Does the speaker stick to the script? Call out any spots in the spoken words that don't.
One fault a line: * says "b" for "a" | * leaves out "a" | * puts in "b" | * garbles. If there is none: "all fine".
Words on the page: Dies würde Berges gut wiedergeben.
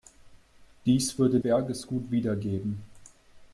all fine